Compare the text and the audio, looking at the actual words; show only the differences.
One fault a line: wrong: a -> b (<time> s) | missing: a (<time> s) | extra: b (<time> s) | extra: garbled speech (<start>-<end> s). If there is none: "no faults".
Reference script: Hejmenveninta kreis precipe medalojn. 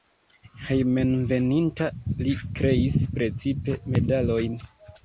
extra: li (2.2 s)